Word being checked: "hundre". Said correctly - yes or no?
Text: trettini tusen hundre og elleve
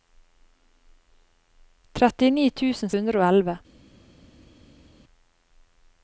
yes